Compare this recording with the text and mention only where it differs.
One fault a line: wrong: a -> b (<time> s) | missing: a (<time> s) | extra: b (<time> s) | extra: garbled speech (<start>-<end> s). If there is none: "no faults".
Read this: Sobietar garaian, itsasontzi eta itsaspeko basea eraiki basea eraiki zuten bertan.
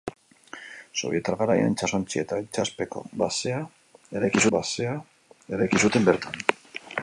no faults